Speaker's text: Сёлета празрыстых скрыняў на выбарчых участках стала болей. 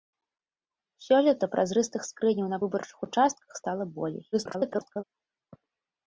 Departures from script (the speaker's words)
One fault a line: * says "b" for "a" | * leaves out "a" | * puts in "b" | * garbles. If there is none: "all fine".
* garbles